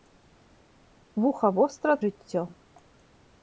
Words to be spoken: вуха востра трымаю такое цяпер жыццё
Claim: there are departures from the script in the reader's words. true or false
true